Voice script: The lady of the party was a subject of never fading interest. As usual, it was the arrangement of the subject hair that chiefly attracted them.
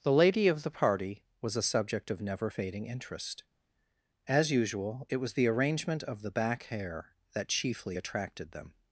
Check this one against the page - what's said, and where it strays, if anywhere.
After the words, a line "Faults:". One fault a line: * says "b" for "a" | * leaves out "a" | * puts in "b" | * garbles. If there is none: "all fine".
The lady of the party was a subject of never fading interest. As usual, it was the arrangement of the back hair that chiefly attracted them.
Faults:
* says "back" for "subject"